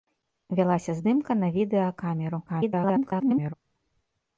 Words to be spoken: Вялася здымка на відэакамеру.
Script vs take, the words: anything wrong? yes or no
yes